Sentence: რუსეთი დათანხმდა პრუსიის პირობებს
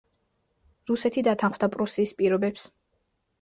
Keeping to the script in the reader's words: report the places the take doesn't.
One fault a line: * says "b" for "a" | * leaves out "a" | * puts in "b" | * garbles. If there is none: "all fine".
all fine